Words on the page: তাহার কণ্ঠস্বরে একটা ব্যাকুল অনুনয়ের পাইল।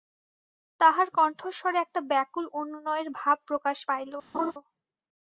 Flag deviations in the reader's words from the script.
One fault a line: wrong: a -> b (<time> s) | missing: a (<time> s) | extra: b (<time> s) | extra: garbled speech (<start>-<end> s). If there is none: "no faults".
extra: ভাব প্রকাশ (3.2 s)